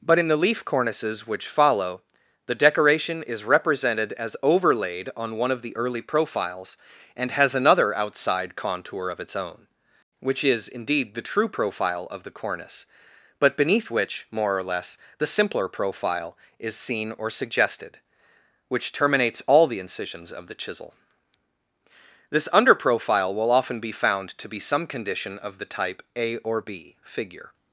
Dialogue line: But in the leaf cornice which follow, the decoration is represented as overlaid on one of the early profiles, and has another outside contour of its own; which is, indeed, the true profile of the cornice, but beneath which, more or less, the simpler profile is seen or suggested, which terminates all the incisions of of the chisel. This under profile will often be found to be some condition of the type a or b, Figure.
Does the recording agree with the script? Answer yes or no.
no